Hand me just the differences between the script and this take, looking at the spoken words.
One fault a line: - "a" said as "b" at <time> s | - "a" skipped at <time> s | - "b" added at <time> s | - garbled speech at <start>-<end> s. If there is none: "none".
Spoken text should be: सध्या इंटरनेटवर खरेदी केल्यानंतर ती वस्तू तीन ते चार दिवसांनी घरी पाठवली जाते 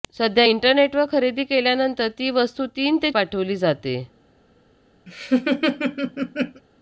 - "चार दिवसांनी घरी" skipped at 3.1 s